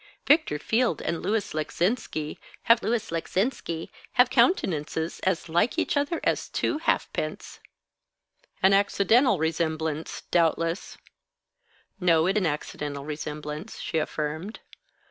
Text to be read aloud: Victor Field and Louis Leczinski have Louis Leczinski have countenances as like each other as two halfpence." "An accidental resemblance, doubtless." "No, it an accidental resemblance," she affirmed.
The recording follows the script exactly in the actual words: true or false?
true